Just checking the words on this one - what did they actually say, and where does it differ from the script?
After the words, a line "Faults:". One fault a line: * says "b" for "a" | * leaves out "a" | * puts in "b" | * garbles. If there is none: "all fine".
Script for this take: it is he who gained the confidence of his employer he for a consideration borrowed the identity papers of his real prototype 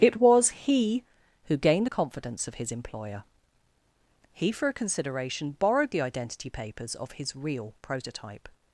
it was he who gained the confidence of his employer he for a consideration borrowed the identity papers of his real prototype
Faults:
* says "was" for "is"